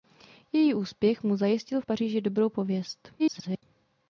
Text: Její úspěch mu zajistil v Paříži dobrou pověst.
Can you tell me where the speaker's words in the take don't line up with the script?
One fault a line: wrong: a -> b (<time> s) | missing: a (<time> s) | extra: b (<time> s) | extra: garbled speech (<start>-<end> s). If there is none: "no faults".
extra: garbled speech (3.2-3.6 s)